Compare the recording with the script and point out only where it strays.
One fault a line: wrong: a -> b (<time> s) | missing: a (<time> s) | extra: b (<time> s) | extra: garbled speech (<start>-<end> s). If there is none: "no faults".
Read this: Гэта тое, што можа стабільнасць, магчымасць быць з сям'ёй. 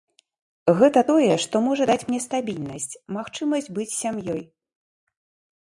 extra: даць мне (1.9 s)